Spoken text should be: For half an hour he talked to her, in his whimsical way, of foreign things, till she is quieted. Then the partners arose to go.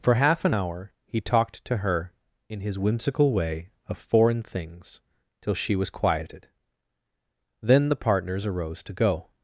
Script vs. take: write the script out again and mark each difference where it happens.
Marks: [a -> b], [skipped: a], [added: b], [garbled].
For half an hour he talked to her, in his whimsical way, of foreign things, till she [is -> was] quieted. Then the partners arose to go.